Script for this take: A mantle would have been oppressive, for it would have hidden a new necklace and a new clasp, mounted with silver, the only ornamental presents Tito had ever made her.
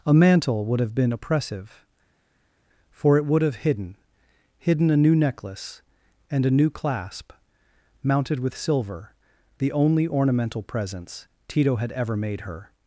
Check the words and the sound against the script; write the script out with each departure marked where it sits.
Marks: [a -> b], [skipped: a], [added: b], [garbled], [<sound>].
A mantle would have been oppressive, for it would have hidden [added: hidden] a new necklace and a new clasp, mounted with silver, the only ornamental presents Tito had ever made her.